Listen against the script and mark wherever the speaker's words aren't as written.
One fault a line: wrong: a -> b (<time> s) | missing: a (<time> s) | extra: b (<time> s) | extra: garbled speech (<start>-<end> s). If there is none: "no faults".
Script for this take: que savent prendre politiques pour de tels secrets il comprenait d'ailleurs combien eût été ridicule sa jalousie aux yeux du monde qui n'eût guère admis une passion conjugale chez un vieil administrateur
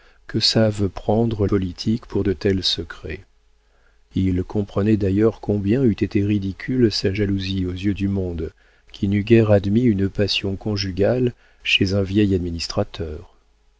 no faults